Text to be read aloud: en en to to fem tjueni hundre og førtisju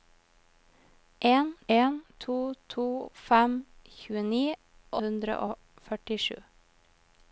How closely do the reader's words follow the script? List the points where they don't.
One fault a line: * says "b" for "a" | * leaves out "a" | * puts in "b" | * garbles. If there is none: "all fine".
all fine